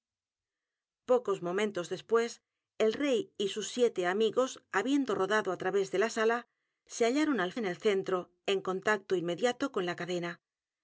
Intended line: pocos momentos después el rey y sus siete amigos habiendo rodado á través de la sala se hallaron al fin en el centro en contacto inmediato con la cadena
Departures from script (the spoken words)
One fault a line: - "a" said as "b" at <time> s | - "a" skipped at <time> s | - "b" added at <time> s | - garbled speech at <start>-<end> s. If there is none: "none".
- "fin" skipped at 7.5 s